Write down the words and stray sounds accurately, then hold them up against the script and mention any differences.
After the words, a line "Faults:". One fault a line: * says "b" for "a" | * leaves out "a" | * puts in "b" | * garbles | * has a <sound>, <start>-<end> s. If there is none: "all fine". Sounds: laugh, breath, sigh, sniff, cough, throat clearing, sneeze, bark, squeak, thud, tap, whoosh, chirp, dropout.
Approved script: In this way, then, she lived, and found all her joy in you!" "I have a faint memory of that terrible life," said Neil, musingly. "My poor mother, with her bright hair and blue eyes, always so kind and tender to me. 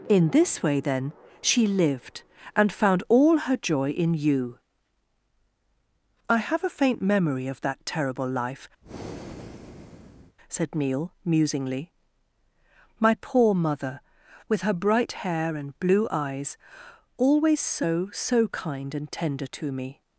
In this way, then, she lived, and found all her joy in you!" "I have a faint memory of that terrible life," said Neil, musingly. "My poor mother, with her bright hair and blue eyes, always so so kind and tender to me.
Faults:
* has a breath, 8.8-10.4 s
* puts in "so"